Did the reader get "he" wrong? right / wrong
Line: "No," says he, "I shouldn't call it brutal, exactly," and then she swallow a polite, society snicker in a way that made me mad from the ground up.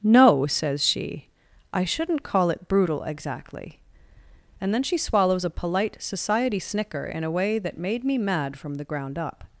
wrong